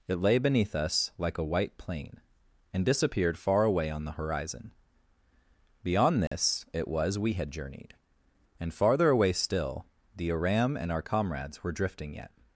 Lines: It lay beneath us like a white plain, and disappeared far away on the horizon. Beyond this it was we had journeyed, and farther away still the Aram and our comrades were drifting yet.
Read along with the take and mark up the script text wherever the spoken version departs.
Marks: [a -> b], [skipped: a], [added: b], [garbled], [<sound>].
It lay beneath us like a white plain, and disappeared far away on the horizon. Beyond this [dropout] it was we had journeyed, and farther away still the Aram and our comrades were drifting yet.